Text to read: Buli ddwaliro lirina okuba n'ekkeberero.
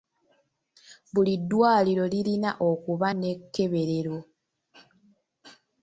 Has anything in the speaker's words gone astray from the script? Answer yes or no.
no